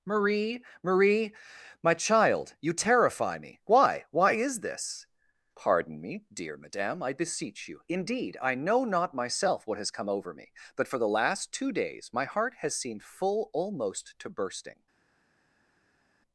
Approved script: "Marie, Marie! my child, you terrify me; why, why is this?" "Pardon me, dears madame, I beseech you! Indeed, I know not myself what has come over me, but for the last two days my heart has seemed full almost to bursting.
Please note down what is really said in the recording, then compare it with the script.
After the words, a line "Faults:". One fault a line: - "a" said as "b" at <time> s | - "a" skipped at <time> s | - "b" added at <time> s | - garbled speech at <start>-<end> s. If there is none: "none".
"Marie, Marie! my child, you terrify me; why, why is this?" "Pardon me, dear madame, I beseech you! Indeed, I know not myself what has come over me, but for the last two days my heart has seemed full almost to bursting.
Faults:
- "dears" said as "dear" at 6.3 s